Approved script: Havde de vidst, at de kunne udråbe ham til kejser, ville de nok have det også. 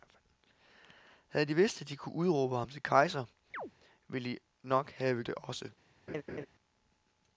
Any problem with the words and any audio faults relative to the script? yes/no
yes